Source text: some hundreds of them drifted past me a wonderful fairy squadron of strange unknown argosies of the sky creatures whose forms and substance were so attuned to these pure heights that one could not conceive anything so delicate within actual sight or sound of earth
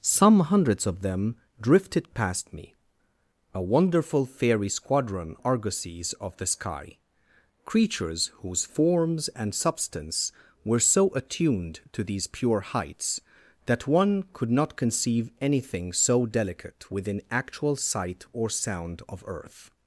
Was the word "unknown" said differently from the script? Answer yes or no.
yes